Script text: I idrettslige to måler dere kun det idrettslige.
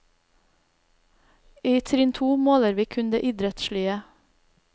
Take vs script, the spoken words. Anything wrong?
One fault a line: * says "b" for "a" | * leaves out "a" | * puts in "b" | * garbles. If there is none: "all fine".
* says "trinn" for "idrettslige"
* says "vi" for "dere"